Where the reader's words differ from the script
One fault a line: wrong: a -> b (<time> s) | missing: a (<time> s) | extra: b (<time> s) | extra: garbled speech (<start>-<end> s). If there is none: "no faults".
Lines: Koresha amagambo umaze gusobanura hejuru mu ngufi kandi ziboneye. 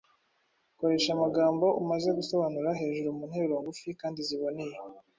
extra: nteruro (3.3 s)